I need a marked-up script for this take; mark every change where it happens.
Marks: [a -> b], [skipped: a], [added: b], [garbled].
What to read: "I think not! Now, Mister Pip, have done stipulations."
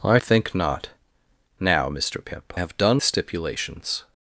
"I think not! Now, Mister Pip, have done stipulations."